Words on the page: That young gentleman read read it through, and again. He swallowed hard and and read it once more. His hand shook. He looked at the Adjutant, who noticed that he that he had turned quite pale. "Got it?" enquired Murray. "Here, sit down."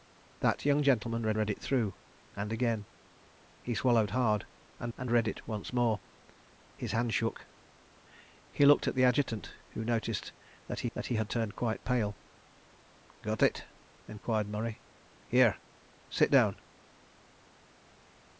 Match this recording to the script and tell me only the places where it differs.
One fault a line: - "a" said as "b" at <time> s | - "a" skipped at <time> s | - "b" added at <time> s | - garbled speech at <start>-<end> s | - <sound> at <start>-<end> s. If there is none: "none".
none